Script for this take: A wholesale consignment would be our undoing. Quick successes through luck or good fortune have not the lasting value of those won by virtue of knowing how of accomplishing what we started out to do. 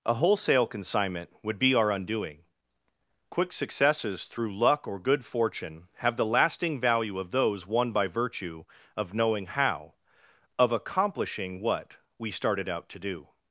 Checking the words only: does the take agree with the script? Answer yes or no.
no